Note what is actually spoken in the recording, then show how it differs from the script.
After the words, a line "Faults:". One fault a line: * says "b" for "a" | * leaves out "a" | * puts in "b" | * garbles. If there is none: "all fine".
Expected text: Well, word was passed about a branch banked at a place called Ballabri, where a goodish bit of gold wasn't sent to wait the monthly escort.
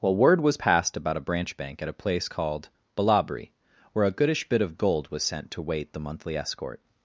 Well, word was passed about a branch bank at a place called Ballabri, where a goodish bit of gold was sent to wait the monthly escort.
Faults:
* says "bank" for "banked"
* says "was" for "wasn't"